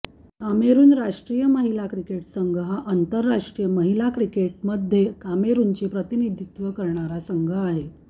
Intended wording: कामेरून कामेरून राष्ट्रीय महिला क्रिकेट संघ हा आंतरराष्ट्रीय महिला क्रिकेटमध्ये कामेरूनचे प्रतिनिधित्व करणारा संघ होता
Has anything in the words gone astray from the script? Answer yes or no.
yes